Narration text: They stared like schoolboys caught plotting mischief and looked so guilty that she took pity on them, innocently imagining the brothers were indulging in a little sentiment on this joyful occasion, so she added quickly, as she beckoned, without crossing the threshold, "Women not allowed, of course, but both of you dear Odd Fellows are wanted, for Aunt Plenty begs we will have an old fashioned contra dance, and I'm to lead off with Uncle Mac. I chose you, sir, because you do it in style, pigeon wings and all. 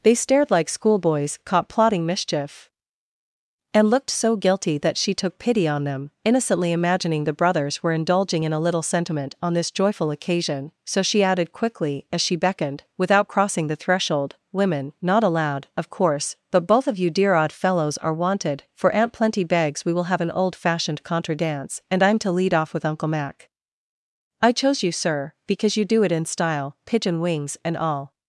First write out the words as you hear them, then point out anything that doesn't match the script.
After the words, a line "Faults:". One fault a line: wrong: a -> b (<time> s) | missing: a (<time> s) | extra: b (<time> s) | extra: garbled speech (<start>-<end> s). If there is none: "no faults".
They stared like schoolboys caught plotting mischief and looked so guilty that she took pity on them, innocently imagining the brothers were indulging in a little sentiment on this joyful occasion, so she added quickly, as she beckoned, without crossing the threshold, "Women not allowed, of course, but both of you dear Odd Fellows are wanted, for Aunt Plenty begs we will have an old fashioned contra dance, and I'm to lead off with Uncle Mac. I chose you, sir, because you do it in style, pigeon wings and all.
Faults:
no faults